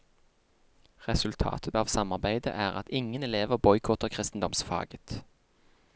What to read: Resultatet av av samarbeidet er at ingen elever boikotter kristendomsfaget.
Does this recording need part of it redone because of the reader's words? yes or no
yes